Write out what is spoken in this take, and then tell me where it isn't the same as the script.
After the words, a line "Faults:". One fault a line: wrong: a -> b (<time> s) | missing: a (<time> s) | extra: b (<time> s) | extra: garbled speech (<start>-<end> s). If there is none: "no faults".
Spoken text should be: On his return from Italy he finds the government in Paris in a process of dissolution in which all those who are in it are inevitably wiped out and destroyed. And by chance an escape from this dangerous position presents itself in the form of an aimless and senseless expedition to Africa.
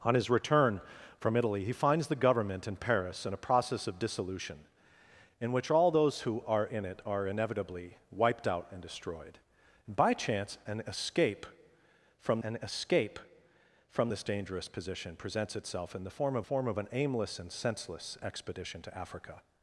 On his return from Italy he finds the government in Paris in a process of dissolution in which all those who are in it are inevitably wiped out and destroyed. And by chance an escape from an escape from this dangerous position presents itself in the form of form of an aimless and senseless expedition to Africa.
Faults:
extra: an escape from (12.4 s)
extra: form of (16.4 s)